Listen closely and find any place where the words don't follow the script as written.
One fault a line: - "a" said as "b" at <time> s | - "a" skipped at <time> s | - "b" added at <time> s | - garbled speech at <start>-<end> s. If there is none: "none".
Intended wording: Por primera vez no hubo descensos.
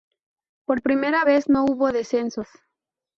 none